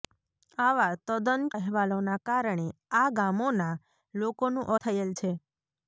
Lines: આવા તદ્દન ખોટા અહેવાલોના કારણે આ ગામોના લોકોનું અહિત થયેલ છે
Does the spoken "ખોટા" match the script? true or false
false